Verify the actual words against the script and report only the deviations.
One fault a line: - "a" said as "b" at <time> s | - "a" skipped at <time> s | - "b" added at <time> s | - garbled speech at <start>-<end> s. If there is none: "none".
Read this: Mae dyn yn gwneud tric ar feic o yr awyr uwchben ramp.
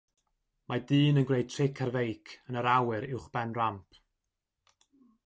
- "o" said as "yn" at 2.5 s